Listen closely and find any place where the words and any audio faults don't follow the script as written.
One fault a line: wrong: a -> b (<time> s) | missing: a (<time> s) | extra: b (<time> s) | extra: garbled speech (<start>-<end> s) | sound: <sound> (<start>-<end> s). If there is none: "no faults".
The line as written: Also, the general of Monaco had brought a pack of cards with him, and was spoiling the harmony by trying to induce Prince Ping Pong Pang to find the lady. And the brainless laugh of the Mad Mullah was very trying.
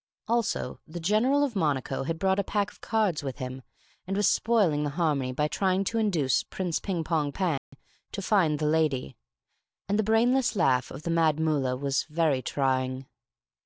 sound: dropout (7.6-7.7 s)